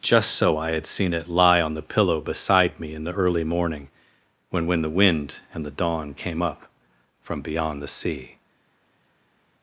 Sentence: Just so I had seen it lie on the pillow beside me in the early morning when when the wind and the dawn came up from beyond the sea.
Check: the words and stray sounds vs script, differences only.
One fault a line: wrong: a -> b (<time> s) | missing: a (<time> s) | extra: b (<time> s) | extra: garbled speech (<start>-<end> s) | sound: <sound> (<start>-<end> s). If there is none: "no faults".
no faults